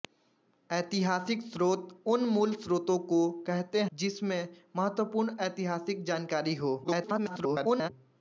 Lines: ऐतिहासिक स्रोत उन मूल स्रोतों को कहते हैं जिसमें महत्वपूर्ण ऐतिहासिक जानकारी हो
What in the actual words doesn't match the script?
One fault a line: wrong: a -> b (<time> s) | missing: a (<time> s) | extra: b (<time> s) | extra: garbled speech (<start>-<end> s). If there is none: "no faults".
missing: हैं (3.8 s)
extra: garbled speech (6.8-7.9 s)